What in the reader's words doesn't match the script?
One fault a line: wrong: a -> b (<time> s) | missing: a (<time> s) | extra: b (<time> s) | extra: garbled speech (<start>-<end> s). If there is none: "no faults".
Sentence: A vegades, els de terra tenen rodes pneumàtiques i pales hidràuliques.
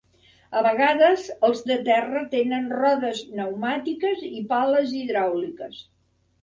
no faults